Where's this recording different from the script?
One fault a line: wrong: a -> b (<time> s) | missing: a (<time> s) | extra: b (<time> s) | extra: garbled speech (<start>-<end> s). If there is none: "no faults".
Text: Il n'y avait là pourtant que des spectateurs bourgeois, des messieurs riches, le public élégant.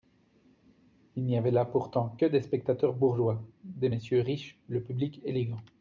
no faults